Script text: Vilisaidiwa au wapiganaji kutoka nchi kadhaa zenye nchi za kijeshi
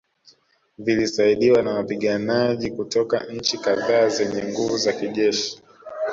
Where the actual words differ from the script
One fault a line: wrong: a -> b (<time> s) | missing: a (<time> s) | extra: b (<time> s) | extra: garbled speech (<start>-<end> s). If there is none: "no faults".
wrong: au -> na (1.6 s)
wrong: nchi -> nguvu (4.4 s)